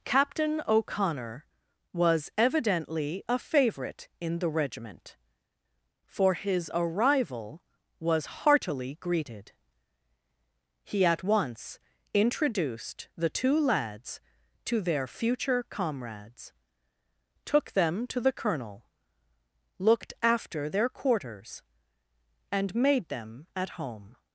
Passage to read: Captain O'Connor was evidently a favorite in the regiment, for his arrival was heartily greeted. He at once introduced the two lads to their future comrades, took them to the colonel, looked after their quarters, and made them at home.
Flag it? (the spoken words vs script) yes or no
no